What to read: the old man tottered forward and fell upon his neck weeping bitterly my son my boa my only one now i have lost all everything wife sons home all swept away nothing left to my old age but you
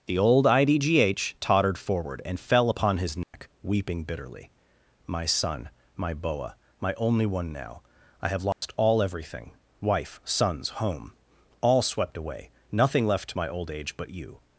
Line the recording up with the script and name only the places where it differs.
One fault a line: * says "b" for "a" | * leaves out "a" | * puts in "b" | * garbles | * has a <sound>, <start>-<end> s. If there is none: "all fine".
* says "idgh" for "man"
* has a dropout, 3.2-3.3 s
* has a dropout, 8.5-8.6 s